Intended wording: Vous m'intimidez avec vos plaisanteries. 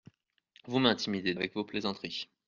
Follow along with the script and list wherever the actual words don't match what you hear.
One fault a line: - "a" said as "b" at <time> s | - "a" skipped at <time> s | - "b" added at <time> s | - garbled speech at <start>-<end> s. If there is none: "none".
none